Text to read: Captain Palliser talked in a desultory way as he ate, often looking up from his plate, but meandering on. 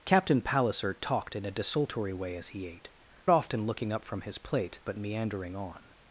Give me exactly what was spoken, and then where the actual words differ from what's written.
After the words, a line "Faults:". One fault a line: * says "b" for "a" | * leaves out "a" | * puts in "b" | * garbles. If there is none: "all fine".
Captain Palliser talked in a desultory way as he ate, often looking up from his plate, but meandering on.
Faults:
all fine